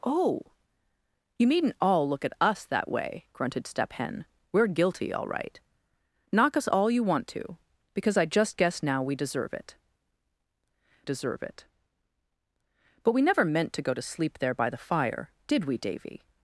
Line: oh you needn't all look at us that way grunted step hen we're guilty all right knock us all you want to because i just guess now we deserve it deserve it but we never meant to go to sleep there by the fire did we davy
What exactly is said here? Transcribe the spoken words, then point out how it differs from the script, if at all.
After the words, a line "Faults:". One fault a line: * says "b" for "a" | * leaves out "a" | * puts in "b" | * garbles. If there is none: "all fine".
oh you needn't all look at us that way grunted step hen we're guilty all right knock us all you want to because i just guess now we deserve it deserve it but we never meant to go to sleep there by the fire did we davy
Faults:
all fine